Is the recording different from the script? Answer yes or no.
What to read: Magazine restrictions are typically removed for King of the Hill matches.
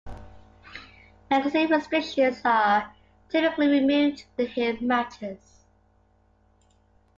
yes